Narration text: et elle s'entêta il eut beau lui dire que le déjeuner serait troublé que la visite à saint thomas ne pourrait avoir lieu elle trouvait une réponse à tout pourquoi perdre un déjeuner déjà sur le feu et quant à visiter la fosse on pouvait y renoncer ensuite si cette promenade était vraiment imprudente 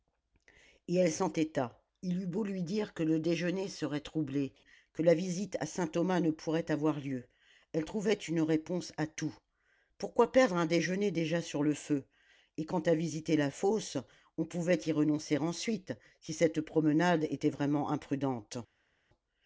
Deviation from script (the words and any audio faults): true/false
false